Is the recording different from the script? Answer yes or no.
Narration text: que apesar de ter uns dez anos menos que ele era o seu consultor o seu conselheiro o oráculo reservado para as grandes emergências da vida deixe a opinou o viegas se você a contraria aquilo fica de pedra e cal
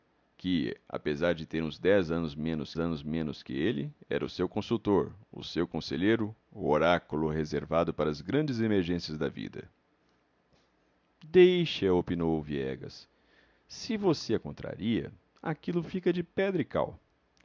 yes